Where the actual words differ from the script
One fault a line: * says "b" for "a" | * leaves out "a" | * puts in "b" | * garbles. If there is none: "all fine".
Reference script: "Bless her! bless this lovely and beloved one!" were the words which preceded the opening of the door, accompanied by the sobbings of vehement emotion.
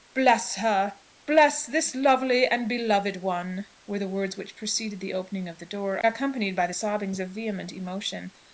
all fine